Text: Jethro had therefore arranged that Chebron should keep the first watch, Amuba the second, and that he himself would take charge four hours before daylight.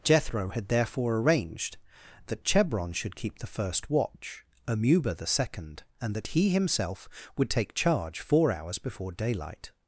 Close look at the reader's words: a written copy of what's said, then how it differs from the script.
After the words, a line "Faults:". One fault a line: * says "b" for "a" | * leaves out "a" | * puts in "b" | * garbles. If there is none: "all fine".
Jethro had therefore arranged that Chebron should keep the first watch, Amuba the second, and that he himself would take charge four hours before daylight.
Faults:
all fine